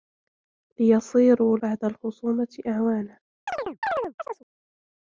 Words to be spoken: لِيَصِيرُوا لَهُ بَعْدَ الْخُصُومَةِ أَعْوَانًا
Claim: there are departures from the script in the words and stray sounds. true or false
true